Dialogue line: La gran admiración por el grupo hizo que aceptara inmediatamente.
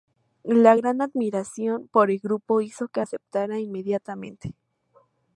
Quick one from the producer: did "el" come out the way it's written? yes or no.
yes